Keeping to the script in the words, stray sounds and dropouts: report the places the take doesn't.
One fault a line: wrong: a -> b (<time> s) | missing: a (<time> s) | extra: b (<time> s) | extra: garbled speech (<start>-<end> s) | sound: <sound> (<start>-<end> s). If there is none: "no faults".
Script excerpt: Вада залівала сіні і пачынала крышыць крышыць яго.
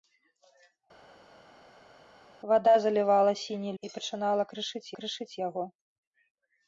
no faults